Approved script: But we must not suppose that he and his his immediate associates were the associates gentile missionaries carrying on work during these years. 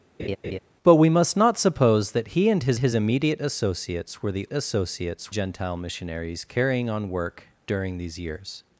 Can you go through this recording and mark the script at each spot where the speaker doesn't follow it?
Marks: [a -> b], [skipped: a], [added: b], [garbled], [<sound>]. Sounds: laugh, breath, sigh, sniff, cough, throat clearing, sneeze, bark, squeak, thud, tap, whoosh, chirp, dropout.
[laugh] But we must not suppose that he and his his immediate associates were the associates gentile missionaries carrying on work during these years.